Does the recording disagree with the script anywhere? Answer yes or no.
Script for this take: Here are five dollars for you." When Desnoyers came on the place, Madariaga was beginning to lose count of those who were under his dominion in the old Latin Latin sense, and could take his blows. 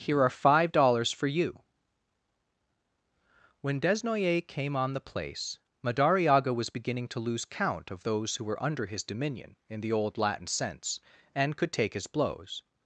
yes